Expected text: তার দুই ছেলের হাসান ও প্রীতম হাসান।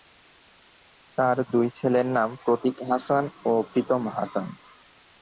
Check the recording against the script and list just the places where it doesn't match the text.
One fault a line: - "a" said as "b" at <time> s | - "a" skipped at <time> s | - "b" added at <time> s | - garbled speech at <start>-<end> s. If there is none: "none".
- "নাম প্রতীক" added at 2.2 s